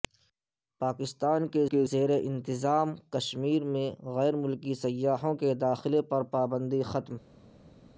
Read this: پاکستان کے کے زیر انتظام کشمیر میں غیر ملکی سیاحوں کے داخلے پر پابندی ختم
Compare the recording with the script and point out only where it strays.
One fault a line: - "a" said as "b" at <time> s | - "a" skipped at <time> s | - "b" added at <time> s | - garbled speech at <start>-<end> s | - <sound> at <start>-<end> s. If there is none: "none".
none